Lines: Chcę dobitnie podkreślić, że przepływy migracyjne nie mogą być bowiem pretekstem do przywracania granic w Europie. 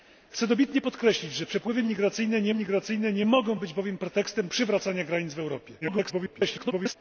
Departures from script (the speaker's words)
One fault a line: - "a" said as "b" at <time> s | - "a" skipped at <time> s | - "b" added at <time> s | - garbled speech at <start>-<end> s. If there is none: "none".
- "migracyjne nie" added at 2.5 s
- "do" skipped at 4.5 s
- garbled speech at 5.8-7.0 s